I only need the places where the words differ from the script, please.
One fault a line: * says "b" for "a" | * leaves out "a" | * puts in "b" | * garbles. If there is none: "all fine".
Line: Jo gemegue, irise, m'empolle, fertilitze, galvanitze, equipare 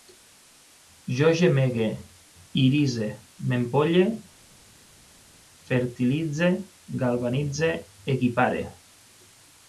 all fine